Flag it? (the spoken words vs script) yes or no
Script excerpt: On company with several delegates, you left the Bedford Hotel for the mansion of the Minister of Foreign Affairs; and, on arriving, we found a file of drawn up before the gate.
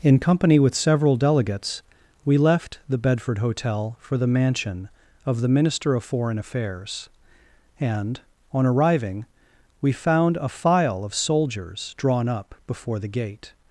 yes